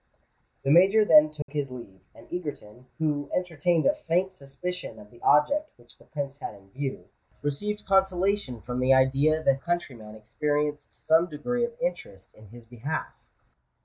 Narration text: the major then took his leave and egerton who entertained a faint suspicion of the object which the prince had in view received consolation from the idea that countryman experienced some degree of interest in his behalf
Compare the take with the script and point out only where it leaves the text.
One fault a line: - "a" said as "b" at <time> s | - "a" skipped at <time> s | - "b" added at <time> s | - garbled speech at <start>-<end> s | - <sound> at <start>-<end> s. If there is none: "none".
- dropout at 1.4-1.5 s